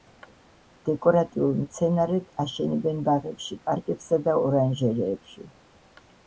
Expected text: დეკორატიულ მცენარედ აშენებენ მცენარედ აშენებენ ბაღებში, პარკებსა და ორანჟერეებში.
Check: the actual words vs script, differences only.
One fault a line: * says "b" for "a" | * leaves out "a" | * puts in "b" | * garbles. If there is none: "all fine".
* leaves out "მცენარედ აშენებენ"